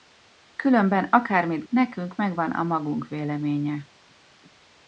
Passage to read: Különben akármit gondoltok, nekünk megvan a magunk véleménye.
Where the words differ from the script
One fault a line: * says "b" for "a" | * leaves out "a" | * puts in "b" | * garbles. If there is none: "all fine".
* leaves out "gondoltok"